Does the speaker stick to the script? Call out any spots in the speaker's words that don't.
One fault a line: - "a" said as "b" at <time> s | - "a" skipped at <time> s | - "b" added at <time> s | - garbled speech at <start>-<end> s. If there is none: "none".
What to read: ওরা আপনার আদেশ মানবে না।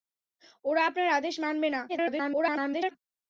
- garbled speech at 1.9-3.0 s